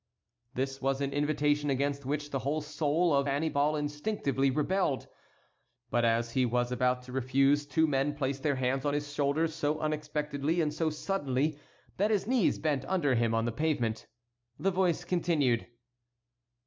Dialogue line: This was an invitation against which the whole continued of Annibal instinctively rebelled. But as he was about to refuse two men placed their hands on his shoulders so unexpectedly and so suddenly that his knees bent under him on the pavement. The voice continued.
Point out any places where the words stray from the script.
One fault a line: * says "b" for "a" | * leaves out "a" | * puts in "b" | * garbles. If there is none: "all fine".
* says "soul" for "continued"